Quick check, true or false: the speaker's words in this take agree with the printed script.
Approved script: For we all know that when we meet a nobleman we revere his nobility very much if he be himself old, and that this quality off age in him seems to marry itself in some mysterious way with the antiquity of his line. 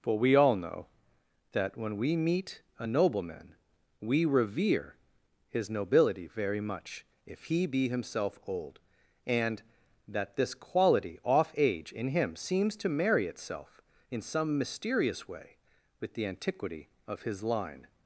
true